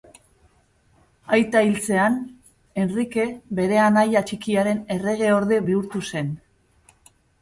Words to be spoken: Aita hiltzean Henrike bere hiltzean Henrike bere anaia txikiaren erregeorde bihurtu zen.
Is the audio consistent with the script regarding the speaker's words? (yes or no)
no